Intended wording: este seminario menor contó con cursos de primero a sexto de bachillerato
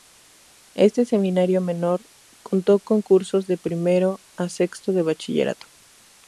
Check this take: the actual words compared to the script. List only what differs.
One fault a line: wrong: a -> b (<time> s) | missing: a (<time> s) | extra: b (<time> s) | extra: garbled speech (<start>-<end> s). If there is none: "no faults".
no faults